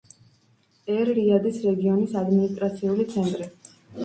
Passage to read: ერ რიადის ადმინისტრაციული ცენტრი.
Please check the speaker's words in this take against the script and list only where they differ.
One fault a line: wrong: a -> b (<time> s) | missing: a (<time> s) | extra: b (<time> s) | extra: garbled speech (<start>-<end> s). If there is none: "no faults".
extra: რეგიონის (1.7 s)